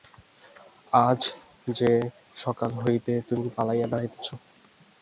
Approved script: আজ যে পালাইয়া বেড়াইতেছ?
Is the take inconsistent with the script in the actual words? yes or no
yes